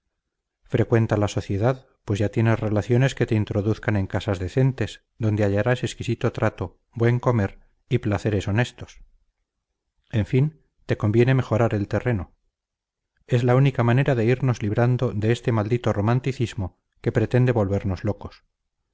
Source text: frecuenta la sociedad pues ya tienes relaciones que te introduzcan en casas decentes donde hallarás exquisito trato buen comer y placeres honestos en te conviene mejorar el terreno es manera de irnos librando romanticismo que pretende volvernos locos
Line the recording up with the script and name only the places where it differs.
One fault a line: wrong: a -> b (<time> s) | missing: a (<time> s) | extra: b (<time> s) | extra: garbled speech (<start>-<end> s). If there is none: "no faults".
extra: fin (10.3 s)
extra: la única (13.4 s)
extra: de este maldito (15.1 s)